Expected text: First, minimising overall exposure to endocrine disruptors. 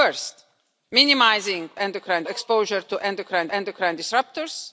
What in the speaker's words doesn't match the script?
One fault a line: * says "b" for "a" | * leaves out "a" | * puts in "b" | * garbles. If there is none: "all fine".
* says "endocrine" for "overall"
* puts in "endocrine"